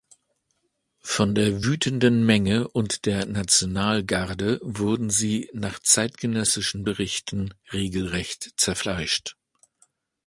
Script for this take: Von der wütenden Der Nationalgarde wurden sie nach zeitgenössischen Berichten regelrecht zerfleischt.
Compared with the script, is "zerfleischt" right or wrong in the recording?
right